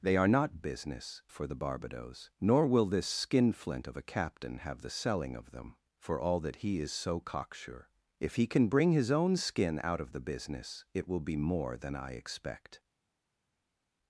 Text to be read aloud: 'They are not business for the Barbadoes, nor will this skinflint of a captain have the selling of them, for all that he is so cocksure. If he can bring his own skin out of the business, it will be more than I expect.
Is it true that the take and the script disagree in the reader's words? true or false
false